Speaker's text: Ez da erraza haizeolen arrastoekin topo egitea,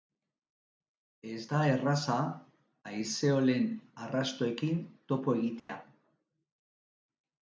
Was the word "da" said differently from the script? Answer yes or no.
no